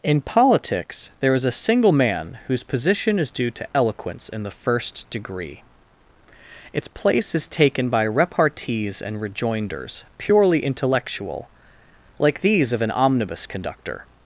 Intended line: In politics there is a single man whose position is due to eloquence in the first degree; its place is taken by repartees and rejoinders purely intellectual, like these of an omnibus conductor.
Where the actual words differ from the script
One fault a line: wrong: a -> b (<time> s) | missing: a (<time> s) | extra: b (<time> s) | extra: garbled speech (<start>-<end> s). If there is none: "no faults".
no faults